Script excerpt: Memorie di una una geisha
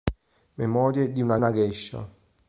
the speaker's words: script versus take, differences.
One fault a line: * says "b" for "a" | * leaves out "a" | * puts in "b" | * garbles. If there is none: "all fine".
all fine